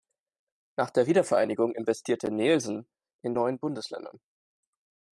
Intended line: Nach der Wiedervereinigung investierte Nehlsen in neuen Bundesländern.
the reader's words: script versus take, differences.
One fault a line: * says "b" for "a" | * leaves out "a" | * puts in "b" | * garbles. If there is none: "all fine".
all fine